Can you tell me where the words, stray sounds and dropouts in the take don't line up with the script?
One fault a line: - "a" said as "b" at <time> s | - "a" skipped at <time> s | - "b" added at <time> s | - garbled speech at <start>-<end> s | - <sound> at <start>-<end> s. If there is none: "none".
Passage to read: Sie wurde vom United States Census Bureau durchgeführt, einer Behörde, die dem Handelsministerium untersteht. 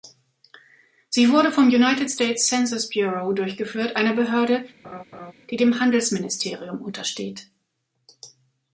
- laugh at 4.8-5.3 s